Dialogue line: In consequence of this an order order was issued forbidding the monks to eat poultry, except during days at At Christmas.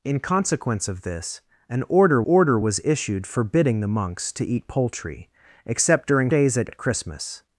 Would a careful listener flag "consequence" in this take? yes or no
no